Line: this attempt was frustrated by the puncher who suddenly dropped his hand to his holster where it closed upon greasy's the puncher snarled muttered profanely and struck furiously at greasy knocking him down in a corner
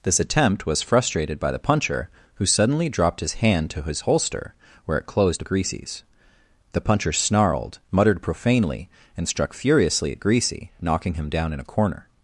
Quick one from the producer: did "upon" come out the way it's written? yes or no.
no